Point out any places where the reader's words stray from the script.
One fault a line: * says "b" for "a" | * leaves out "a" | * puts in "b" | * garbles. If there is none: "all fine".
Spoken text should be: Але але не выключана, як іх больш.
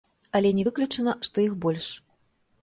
* leaves out "але"
* says "што" for "як"